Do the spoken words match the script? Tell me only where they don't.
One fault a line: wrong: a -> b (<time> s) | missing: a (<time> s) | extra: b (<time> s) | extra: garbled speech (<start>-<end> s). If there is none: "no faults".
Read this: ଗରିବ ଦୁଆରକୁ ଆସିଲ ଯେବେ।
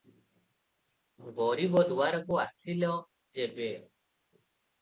no faults